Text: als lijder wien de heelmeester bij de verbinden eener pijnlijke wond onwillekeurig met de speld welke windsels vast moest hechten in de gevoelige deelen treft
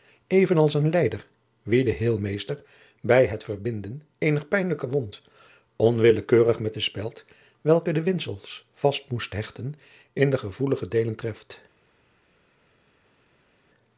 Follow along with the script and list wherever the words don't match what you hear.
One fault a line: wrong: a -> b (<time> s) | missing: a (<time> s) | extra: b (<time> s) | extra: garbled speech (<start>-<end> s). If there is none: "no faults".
extra: een (0.7 s)
wrong: de -> het (3.2 s)
extra: de (7.9 s)